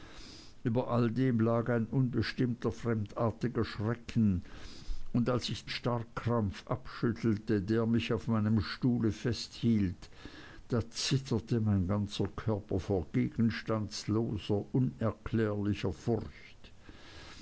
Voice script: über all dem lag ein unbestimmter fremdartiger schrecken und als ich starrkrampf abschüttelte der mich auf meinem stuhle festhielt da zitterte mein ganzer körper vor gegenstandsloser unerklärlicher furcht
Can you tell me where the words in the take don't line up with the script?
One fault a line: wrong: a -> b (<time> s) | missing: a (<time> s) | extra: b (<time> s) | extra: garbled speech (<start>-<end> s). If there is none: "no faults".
no faults